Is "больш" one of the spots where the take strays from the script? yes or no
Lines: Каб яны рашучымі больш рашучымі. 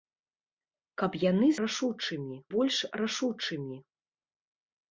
no